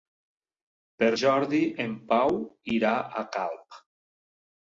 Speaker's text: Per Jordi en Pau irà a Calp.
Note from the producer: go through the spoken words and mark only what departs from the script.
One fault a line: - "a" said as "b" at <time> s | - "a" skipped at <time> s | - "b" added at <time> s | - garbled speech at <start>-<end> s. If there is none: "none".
none